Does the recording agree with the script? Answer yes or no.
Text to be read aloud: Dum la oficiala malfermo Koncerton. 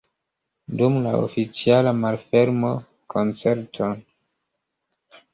yes